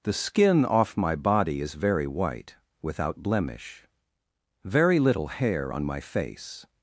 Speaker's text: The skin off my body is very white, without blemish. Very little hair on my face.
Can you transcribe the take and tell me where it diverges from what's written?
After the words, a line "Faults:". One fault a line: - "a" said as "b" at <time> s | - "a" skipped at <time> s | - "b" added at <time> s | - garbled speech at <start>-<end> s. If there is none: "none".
The skin off my body is very white, without blemish. Very little hair on my face.
Faults:
none